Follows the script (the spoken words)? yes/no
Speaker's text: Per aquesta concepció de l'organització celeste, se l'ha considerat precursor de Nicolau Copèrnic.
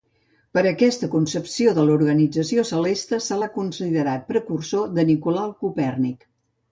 yes